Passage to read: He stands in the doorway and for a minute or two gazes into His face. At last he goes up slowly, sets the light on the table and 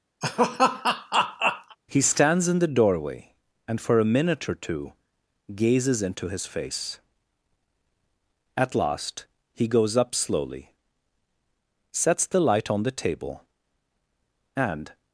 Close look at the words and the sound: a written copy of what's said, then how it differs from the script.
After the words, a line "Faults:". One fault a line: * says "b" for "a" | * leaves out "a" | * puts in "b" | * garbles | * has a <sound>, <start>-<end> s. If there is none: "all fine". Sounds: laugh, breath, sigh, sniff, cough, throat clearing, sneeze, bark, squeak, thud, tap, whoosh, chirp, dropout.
He stands in the doorway and for a minute or two gazes into His face. At last he goes up slowly, sets the light on the table and
Faults:
* has a laugh, 0.2-1.8 s